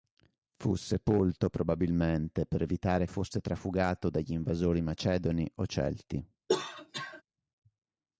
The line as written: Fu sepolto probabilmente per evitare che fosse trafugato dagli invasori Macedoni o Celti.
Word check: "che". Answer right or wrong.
wrong